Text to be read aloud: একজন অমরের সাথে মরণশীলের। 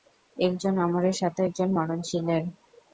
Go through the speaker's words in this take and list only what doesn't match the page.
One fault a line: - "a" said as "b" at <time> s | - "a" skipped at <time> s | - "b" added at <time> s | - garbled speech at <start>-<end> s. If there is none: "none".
- "একজন" added at 1.5 s